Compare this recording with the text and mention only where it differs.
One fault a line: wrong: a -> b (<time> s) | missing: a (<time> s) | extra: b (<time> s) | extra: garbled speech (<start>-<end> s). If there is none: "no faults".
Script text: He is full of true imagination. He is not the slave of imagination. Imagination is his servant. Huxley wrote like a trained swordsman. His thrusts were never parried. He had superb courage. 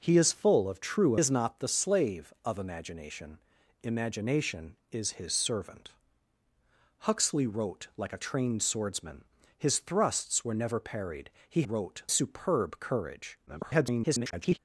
missing: imagination He (1.1 s)
wrong: had -> wrote (11.6 s)
extra: garbled speech (13.5-14.6 s)